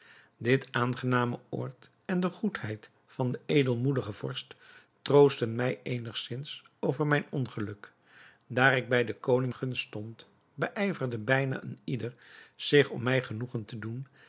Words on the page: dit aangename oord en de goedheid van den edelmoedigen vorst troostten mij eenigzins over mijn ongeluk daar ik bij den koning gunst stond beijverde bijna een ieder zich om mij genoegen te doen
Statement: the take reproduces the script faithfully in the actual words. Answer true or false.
true